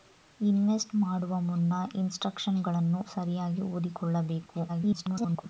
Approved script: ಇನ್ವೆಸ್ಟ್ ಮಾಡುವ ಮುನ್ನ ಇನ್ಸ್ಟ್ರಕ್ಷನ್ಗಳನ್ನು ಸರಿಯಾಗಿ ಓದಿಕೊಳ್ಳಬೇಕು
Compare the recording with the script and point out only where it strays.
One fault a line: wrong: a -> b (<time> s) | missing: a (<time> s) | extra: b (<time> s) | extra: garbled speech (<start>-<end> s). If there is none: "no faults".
extra: garbled speech (4.7-5.4 s)